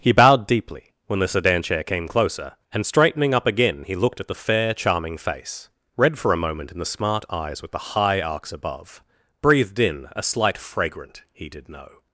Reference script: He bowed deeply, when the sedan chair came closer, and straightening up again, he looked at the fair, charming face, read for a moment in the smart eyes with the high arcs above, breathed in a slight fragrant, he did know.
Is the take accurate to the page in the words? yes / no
yes